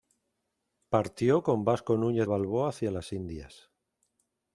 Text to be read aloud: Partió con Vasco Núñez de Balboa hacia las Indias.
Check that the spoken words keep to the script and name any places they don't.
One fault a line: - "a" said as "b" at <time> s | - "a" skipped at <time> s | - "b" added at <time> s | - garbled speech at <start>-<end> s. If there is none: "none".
- "de" skipped at 2.3 s